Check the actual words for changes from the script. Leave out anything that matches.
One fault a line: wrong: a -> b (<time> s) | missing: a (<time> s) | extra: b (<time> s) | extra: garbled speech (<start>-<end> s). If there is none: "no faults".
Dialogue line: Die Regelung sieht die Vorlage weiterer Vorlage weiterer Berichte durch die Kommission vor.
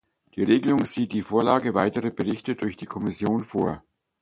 missing: Vorlage weiterer (2.1 s)